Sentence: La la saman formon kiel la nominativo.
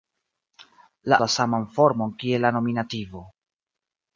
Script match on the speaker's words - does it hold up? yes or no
yes